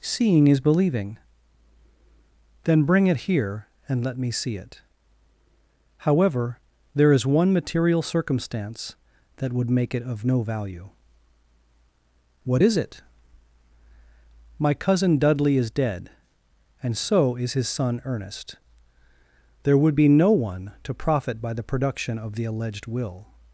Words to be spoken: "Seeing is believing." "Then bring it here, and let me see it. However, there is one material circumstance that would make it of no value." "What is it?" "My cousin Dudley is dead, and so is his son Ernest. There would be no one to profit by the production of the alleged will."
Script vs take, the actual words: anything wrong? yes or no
no